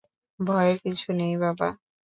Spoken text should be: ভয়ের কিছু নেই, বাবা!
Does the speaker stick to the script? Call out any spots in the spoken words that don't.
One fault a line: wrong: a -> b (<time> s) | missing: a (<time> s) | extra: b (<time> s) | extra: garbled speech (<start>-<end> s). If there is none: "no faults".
no faults